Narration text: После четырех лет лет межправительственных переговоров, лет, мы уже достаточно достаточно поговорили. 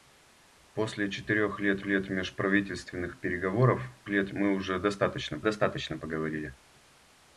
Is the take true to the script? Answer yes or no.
yes